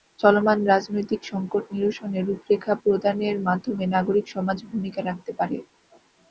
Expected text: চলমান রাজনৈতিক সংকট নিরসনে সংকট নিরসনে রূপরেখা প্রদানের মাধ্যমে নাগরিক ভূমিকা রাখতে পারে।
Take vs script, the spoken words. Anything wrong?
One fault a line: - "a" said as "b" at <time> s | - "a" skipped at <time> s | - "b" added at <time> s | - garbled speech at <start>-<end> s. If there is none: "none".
- "সংকট নিরসনে" skipped at 2.2 s
- "সমাজ" added at 4.3 s